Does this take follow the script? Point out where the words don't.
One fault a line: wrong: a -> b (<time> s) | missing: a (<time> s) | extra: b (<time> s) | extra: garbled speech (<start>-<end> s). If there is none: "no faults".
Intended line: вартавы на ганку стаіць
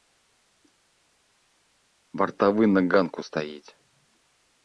no faults